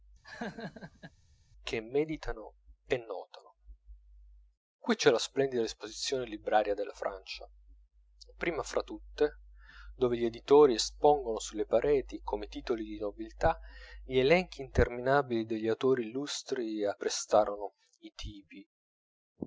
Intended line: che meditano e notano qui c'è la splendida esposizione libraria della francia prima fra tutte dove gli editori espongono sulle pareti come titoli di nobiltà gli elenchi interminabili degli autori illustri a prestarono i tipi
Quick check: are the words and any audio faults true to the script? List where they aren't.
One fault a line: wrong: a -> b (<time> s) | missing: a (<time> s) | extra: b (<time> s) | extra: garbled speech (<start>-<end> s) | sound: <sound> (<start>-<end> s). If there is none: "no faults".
sound: laugh (0.2-1.1 s)